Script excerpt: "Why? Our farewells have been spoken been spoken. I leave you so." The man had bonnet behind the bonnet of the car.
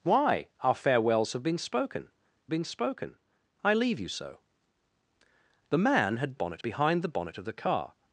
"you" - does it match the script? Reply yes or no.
yes